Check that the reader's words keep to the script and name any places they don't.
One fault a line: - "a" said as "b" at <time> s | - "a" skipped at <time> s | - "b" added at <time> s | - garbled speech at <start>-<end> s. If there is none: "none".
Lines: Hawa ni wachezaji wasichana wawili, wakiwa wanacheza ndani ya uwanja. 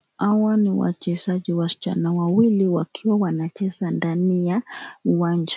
none